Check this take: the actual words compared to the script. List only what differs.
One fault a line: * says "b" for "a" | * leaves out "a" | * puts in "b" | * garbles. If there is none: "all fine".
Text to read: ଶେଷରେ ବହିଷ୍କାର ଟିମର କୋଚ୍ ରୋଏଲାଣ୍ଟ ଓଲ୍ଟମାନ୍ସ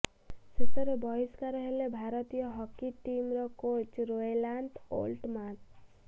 * puts in "ହେଲେ ଭାରତୀୟ ହକି"